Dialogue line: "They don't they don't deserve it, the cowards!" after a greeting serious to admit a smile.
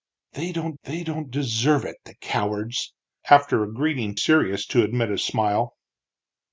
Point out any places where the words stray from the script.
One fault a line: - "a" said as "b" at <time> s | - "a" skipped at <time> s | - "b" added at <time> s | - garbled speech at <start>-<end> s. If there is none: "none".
none